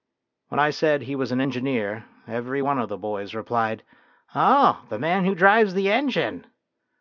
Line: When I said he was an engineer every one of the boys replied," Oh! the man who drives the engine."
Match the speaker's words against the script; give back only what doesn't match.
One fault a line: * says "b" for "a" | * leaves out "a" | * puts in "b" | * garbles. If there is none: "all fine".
all fine